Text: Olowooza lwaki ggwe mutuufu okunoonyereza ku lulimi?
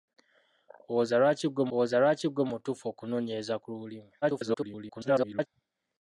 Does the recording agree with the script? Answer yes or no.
no